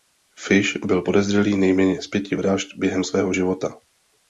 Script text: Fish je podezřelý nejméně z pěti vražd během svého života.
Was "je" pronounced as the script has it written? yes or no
no